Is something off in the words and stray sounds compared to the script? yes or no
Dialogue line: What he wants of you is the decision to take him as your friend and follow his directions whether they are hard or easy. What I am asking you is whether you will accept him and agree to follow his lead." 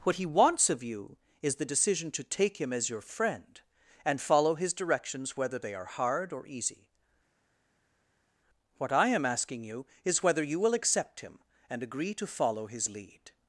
no